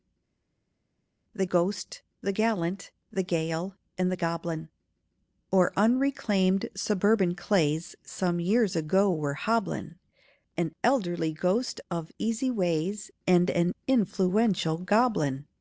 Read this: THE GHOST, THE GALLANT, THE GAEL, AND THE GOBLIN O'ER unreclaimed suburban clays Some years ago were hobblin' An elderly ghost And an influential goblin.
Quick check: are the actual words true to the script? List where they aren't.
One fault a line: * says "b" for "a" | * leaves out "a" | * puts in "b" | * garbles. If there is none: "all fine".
* puts in "of easy ways"